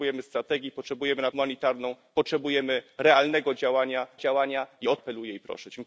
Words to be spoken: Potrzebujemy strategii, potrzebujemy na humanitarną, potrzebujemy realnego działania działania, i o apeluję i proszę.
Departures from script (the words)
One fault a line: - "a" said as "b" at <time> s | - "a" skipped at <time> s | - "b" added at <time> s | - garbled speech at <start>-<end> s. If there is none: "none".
none